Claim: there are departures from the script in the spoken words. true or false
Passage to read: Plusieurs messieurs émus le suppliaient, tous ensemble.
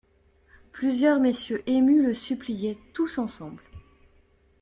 false